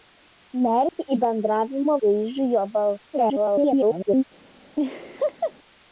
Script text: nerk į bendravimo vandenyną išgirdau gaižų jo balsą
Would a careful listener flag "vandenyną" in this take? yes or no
yes